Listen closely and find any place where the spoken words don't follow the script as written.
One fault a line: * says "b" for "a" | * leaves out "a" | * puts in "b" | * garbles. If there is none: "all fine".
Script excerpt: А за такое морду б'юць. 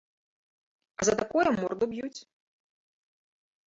all fine